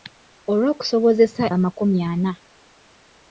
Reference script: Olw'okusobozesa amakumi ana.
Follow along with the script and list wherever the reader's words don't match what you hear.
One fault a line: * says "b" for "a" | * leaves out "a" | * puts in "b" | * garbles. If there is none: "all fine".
all fine